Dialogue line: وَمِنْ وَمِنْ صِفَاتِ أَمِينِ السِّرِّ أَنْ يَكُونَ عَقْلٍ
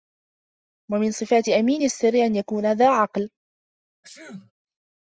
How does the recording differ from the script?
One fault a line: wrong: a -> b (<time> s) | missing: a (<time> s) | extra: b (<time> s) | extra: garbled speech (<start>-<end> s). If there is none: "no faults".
missing: وَمِنْ (1.1 s)
extra: ذَا (2.7 s)